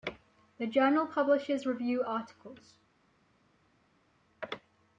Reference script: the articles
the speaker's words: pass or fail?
fail